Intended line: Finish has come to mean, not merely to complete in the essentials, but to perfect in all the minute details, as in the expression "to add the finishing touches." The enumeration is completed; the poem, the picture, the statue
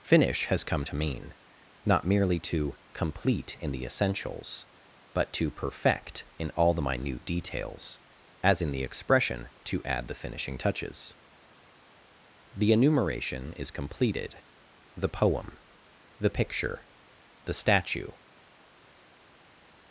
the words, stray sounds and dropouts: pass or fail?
pass